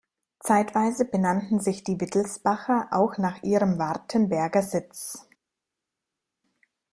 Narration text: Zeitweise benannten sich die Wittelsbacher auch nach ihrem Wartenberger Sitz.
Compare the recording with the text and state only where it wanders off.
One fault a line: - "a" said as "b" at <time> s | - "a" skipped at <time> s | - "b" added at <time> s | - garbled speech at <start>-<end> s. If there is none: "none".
none